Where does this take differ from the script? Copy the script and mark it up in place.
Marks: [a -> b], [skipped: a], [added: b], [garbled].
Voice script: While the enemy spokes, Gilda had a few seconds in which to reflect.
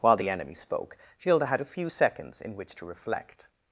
While the enemy [spokes, -> spoke] Gilda had a few seconds in which to reflect.